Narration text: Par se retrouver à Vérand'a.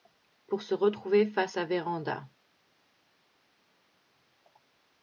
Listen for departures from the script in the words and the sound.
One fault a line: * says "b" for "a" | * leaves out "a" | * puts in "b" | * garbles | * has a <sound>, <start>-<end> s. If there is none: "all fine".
* says "Pour" for "Par"
* puts in "face"